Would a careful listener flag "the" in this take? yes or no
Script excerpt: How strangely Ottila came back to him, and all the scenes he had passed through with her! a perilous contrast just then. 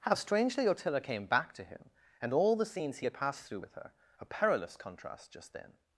no